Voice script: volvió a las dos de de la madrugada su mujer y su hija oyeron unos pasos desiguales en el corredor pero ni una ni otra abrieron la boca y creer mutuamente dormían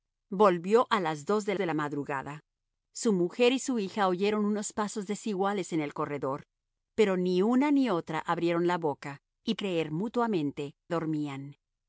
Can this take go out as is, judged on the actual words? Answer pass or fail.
pass